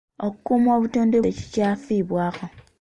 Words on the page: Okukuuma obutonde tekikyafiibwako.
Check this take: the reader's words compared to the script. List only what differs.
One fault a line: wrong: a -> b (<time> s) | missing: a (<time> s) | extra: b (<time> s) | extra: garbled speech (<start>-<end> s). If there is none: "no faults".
no faults